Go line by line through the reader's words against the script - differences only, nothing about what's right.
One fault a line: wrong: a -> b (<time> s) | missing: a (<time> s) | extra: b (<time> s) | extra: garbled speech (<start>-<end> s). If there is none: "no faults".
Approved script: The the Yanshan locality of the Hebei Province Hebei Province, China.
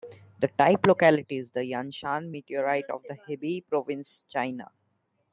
extra: type locality is (0.6 s)
wrong: locality -> meteorite (2.3 s)
missing: Hebei Province (4.3 s)